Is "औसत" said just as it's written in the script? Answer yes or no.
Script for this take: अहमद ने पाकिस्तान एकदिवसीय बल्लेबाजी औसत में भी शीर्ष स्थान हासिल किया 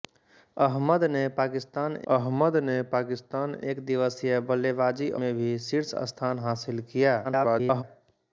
no